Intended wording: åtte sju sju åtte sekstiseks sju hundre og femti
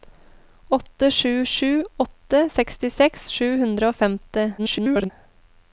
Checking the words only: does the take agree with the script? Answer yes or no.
no